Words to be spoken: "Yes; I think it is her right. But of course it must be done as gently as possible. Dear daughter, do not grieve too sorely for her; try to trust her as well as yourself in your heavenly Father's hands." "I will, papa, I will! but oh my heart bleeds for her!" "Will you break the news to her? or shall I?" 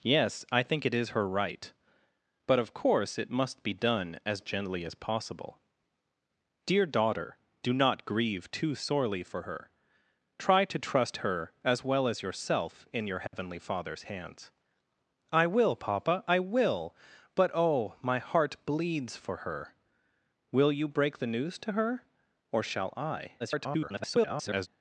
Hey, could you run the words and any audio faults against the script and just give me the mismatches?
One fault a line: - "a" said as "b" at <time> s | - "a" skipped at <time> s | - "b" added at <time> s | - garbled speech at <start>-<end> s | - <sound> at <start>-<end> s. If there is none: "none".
- dropout at 13.3-13.3 s
- garbled speech at 23.4-24.7 s